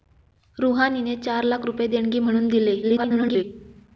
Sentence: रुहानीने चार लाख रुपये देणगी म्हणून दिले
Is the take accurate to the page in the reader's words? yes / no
no